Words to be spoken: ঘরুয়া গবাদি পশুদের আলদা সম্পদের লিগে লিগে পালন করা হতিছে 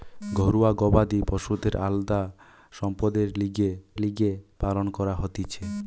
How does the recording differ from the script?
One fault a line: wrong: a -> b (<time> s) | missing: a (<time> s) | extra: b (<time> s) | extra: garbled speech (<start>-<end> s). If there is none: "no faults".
no faults